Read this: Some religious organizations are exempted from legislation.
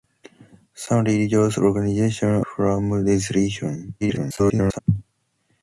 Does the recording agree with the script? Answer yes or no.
no